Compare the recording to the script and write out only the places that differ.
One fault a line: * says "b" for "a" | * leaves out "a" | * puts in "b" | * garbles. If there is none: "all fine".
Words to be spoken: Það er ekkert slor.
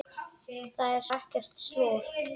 all fine